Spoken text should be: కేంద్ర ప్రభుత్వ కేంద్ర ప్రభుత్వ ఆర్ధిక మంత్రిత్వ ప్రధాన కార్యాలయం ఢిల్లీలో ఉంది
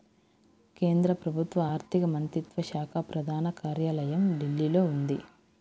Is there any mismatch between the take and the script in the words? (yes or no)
yes